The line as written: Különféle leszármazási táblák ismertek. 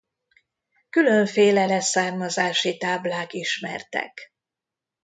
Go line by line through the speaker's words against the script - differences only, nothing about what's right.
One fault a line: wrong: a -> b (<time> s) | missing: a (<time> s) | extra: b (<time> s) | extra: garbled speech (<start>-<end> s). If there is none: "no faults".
no faults